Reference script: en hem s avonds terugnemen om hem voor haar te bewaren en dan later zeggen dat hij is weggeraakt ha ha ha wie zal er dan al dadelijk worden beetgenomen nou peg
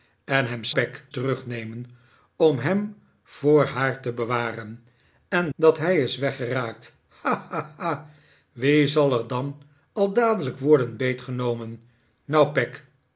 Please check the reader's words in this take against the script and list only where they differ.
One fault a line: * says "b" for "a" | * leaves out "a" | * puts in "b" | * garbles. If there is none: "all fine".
* says "peg" for "avonds"
* leaves out "dan later zeggen"